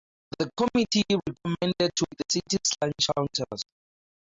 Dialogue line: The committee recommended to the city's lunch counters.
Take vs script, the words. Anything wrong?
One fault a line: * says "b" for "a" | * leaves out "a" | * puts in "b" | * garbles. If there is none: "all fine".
all fine